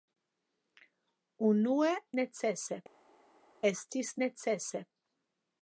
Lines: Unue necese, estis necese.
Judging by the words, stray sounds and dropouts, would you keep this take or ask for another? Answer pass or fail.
pass